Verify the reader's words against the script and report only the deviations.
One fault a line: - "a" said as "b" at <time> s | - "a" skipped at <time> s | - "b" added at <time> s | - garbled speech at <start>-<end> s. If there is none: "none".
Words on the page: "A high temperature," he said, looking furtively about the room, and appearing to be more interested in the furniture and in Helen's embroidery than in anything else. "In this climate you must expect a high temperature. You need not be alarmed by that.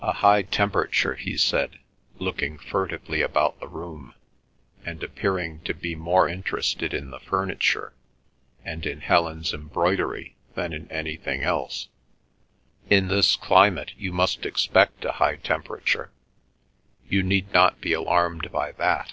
none